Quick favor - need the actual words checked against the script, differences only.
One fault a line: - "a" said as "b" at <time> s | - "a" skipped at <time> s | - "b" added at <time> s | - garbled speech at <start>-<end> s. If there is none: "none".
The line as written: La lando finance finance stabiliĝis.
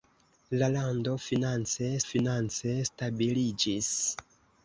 none